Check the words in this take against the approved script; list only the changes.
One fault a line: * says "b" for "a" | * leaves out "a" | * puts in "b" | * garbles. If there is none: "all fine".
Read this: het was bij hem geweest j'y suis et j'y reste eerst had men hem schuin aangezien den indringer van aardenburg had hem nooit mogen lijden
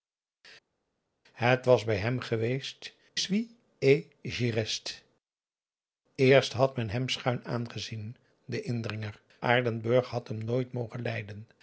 * leaves out "j'y"
* leaves out "van"